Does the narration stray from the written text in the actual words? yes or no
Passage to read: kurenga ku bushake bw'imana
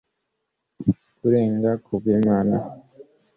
yes